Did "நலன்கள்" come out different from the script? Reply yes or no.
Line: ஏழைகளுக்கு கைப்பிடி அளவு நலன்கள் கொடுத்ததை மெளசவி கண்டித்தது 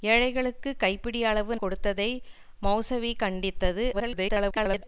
yes